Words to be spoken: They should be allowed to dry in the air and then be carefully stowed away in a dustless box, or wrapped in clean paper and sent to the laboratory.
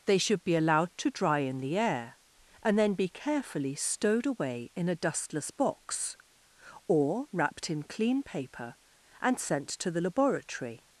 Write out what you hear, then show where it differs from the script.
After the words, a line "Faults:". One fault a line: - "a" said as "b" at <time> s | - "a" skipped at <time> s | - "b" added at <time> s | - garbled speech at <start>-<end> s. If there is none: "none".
They should be allowed to dry in the air and then be carefully stowed away in a dustless box, or wrapped in clean paper and sent to the laboratory.
Faults:
none